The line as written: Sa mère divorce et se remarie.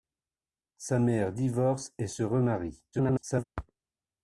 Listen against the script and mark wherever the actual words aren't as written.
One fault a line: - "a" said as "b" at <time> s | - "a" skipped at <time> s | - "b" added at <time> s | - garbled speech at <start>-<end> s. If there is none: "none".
- garbled speech at 2.9-3.4 s